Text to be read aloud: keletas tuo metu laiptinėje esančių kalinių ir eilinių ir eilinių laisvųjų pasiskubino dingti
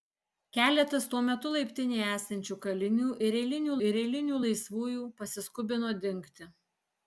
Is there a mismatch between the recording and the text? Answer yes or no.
no